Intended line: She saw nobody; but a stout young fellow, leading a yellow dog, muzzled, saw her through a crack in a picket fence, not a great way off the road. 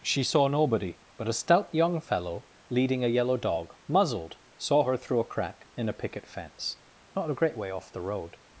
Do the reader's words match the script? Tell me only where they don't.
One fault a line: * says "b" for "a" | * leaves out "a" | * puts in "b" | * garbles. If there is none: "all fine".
all fine